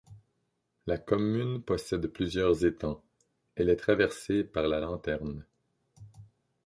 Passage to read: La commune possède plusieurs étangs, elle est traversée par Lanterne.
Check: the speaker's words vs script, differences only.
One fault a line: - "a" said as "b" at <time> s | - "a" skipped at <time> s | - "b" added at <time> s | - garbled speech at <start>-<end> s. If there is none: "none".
- "la" added at 4.7 s